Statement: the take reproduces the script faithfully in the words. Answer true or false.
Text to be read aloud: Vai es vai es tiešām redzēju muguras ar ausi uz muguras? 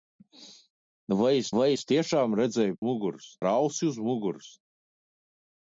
true